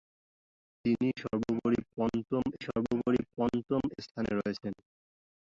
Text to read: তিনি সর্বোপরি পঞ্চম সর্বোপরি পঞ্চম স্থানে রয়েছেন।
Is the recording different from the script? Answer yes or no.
no